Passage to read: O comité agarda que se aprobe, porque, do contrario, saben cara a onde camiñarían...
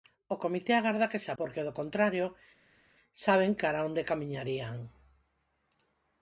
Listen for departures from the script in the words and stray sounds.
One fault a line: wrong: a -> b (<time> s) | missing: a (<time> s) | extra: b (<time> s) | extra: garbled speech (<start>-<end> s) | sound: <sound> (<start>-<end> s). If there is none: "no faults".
missing: aprobe (1.3 s)